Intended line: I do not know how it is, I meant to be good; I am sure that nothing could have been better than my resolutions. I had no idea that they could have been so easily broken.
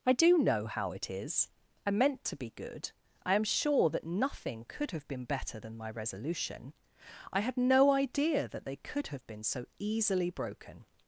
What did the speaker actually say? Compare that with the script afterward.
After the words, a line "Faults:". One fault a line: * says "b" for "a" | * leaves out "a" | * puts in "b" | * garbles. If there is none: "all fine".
I do know how it is, I meant to be good; I am sure that nothing could have been better than my resolution. I had no idea that they could have been so easily broken.
Faults:
* leaves out "not"
* says "resolution" for "resolutions"